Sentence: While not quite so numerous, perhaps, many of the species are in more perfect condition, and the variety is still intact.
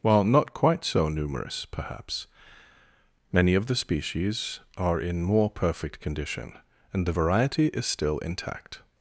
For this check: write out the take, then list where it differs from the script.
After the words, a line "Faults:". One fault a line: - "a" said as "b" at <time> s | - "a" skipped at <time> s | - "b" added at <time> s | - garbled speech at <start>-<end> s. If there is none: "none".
While not quite so numerous, perhaps, many of the species are in more perfect condition, and the variety is still intact.
Faults:
none